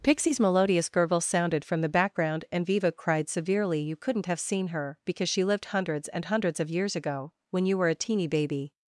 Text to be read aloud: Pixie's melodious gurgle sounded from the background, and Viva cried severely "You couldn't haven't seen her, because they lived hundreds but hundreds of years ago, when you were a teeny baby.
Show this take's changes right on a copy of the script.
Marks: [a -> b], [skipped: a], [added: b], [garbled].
Pixie's melodious gurgle sounded from the background, and Viva cried severely "You couldn't [haven't -> have] seen her, because [they -> she] lived hundreds [but -> and] hundreds of years ago, when you were a teeny baby.